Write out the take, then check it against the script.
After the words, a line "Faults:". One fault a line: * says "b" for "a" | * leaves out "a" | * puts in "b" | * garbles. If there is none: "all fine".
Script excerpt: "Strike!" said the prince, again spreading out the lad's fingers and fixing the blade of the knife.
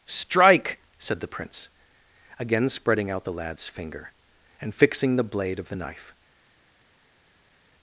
"Strike!" said the prince, again spreading out the lad's finger and fixing the blade of the knife.
Faults:
* says "finger" for "fingers"